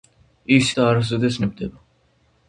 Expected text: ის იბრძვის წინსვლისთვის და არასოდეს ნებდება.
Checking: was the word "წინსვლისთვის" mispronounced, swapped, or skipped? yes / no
yes